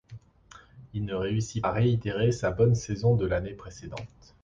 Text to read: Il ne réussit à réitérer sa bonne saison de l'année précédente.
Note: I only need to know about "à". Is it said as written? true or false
true